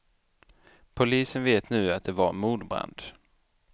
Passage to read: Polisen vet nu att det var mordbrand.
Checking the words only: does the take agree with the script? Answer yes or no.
yes